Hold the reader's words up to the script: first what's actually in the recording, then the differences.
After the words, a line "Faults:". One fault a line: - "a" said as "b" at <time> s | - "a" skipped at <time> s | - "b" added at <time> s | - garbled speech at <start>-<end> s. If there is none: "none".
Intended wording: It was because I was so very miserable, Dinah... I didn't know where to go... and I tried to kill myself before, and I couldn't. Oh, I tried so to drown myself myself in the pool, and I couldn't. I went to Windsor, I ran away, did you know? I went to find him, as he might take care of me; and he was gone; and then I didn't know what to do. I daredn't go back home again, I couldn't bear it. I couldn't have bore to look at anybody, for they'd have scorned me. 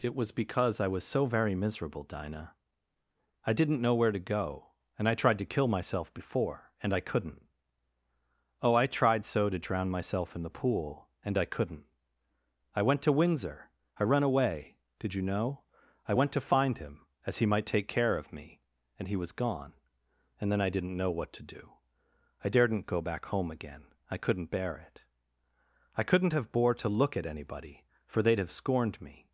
It was because I was so very miserable, Dinah... I didn't know where to go... and I tried to kill myself before, and I couldn't. Oh, I tried so to drown myself in the pool, and I couldn't. I went to Windsor, I ran away, did you know? I went to find him, as he might take care of me; and he was gone; and then I didn't know what to do. I daredn't go back home again, I couldn't bear it. I couldn't have bore to look at anybody, for they'd have scorned me.
Faults:
- "myself" skipped at 10.3 s